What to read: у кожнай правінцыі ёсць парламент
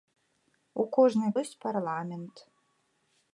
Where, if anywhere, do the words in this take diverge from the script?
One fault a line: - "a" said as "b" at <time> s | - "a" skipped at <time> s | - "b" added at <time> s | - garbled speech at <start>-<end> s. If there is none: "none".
- "правінцыі" skipped at 1.3 s